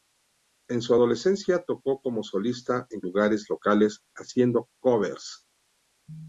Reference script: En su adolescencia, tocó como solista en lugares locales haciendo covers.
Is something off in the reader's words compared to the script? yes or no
no